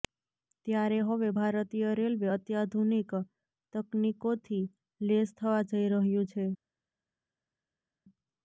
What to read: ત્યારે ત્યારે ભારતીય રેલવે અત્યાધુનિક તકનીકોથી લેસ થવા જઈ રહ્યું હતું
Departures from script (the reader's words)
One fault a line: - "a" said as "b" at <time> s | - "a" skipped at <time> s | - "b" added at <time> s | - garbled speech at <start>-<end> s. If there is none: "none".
- "ત્યારે" said as "હવે" at 1.1 s
- "હતું" said as "છે" at 6.3 s